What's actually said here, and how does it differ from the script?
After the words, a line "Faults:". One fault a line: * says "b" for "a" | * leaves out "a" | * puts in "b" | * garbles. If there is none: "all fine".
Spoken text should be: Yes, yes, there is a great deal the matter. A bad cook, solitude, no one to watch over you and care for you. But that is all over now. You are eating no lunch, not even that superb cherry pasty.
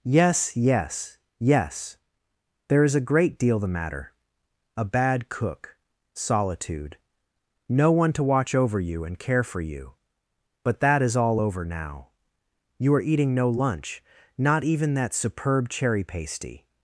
Yes, yes, yes there is a great deal the matter. A bad cook, solitude, no one to watch over you and care for you. But that is all over now. You are eating no lunch, not even that superb cherry pasty.
Faults:
* puts in "yes"